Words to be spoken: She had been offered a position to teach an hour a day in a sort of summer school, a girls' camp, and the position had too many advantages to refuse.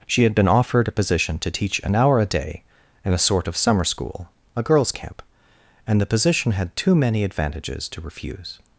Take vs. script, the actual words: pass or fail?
pass